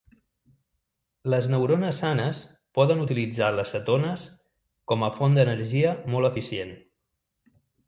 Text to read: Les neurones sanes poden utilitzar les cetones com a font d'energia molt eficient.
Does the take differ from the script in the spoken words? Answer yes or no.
no